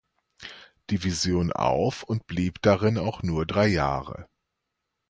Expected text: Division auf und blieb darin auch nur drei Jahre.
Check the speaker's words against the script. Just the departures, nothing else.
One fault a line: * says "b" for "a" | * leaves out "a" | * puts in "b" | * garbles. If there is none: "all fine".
all fine